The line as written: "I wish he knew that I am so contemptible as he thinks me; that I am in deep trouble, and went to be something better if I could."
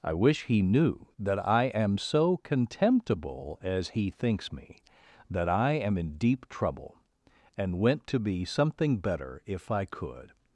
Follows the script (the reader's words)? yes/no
yes